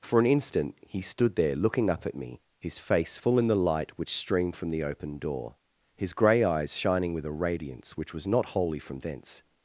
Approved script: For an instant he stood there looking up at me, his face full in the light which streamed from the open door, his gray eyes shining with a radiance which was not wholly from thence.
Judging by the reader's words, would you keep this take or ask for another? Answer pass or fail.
pass